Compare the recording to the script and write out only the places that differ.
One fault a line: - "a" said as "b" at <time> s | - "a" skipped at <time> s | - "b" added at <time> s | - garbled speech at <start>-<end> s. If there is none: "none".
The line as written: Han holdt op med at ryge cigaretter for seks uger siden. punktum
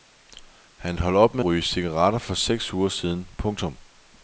- "at" skipped at 1.4 s